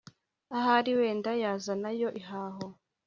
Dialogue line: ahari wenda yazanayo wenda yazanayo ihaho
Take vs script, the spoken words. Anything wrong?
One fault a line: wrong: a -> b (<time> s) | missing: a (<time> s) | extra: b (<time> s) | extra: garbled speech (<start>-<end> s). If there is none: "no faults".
missing: wenda yazanayo (2.1 s)